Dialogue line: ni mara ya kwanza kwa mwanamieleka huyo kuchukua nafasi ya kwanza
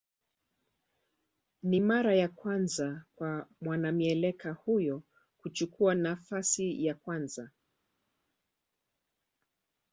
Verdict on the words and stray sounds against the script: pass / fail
pass